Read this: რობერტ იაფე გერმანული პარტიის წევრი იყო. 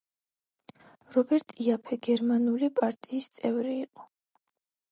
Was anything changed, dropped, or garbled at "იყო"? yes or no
no